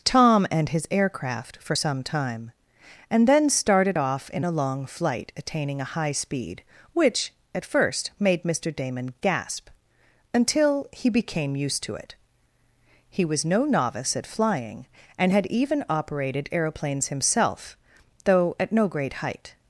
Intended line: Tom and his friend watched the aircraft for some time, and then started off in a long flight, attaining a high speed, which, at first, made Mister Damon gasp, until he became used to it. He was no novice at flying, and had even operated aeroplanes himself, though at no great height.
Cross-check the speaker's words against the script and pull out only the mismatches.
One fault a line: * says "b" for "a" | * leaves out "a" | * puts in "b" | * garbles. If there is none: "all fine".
* leaves out "friend watched the"